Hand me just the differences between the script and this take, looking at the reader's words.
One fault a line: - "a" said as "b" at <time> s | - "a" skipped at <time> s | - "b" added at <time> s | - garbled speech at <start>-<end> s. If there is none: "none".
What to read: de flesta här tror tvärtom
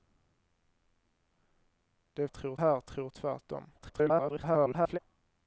- "flesta" said as "tror" at 2.3 s
- garbled speech at 3.8-5.0 s